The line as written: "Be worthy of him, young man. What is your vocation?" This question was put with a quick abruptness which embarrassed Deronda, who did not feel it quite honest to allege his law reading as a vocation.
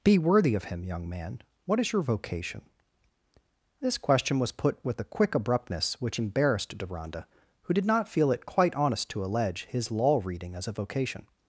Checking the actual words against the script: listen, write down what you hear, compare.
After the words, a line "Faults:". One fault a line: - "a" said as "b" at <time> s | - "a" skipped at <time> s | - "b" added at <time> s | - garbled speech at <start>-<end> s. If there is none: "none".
"Be worthy of him, young man. What is your vocation?" This question was put with a quick abruptness which embarrassed Deronda, who did not feel it quite honest to allege his law reading as a vocation.
Faults:
none